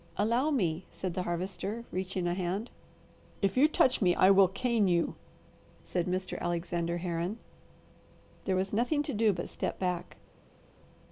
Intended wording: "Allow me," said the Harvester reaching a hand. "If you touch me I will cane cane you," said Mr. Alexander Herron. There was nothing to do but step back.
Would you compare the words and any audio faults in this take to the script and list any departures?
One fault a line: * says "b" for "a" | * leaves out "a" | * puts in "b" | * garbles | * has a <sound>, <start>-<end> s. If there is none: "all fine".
* leaves out "cane"